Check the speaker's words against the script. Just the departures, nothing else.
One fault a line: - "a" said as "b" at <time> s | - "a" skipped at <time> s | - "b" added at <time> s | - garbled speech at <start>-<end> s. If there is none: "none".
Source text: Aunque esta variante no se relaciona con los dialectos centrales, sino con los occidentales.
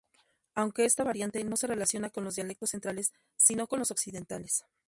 none